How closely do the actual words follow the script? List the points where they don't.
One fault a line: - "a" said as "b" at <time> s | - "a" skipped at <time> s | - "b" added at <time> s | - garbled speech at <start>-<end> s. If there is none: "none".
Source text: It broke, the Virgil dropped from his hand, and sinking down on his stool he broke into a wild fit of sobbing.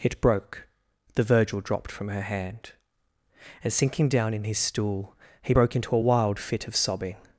- "his" said as "her" at 2.1 s
- "on" said as "in" at 4.3 s